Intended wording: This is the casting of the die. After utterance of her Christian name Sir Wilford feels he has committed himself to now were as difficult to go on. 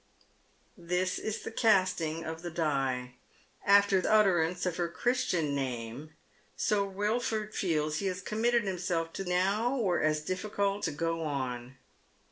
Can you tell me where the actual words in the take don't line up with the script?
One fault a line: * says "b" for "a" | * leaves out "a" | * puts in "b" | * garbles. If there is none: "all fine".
all fine